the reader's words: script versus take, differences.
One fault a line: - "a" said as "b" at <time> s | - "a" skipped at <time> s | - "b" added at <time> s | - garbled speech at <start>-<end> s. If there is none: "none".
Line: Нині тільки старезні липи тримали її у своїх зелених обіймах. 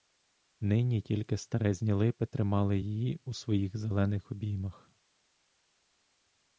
none